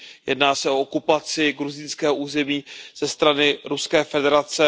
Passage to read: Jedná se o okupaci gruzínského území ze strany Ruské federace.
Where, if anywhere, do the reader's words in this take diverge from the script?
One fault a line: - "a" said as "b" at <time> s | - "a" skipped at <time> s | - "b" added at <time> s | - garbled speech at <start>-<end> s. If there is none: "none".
none